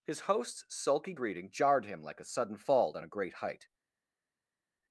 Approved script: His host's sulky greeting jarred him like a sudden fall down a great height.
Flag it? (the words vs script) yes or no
no